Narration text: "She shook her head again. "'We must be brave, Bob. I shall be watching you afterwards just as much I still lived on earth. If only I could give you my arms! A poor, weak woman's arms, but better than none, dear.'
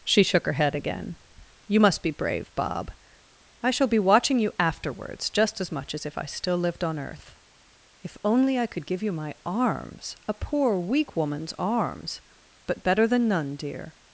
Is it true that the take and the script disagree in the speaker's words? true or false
true